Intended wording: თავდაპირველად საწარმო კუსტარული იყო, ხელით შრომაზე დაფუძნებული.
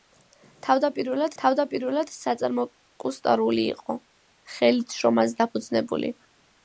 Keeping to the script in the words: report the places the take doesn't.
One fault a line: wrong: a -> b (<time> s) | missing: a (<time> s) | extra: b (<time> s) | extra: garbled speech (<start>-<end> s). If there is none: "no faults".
extra: თავდაპირველად (1.4 s)